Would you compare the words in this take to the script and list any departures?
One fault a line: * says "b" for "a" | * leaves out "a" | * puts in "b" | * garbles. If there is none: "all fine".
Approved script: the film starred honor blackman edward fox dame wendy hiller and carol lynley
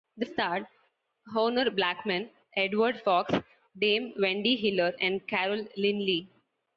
* leaves out "film"